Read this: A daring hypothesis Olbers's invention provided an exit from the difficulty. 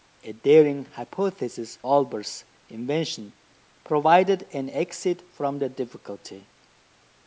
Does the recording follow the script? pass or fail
pass